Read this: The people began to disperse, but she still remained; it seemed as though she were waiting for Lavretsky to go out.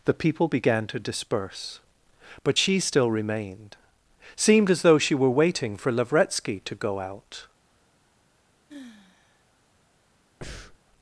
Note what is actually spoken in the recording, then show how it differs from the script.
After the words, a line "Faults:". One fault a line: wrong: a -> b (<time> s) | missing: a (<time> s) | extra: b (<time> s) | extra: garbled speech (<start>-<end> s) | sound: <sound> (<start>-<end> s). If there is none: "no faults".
The people began to disperse, but she still remained; seemed as though she were waiting for Lavretsky to go out.
Faults:
missing: it (3.8 s)
sound: sigh (8.7-9.4 s)
sound: breath (10.4-10.8 s)